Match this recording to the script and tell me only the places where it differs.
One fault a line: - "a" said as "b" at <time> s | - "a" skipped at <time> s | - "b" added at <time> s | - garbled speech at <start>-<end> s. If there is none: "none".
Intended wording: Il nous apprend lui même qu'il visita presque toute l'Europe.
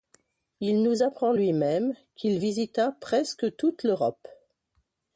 none